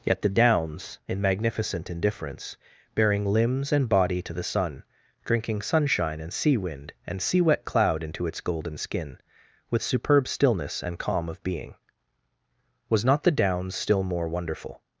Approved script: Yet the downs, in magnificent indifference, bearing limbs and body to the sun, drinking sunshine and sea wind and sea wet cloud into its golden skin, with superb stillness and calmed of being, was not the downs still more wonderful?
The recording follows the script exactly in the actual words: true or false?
false